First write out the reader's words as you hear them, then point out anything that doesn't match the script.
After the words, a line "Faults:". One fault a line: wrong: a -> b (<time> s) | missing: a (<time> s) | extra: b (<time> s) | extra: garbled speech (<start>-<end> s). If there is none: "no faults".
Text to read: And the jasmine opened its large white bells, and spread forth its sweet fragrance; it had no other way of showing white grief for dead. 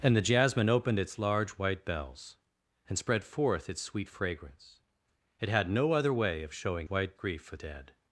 And the jasmine opened its large white bells, and spread forth its sweet fragrance; it had no other way of showing white grief for dead.
Faults:
no faults